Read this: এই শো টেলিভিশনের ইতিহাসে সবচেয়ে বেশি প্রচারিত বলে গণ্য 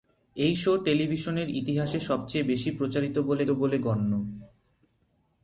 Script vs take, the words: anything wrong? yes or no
yes